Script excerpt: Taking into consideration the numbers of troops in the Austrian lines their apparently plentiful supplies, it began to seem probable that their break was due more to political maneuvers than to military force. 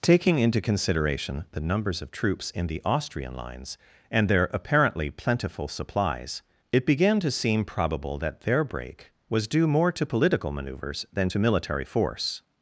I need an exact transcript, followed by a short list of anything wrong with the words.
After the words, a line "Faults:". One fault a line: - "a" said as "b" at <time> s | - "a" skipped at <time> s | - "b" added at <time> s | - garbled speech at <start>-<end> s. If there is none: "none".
Taking into consideration the numbers of troops in the Austrian lines and their apparently plentiful supplies, it began to seem probable that their break was due more to political maneuvers than to military force.
Faults:
- "and" added at 4.1 s